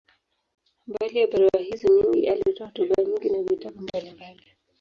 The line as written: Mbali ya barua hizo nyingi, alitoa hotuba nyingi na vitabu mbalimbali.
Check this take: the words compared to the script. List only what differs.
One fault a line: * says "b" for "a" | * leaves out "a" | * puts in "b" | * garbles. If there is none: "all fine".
all fine